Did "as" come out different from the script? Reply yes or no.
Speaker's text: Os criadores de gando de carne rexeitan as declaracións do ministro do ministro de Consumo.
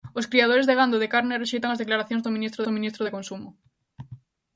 no